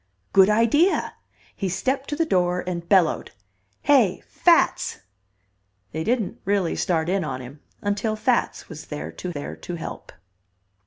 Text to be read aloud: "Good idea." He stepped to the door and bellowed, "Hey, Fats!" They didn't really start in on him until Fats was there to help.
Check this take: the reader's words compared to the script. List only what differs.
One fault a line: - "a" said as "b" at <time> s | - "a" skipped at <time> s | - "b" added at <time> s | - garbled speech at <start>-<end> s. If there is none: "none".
- "there to" added at 9.3 s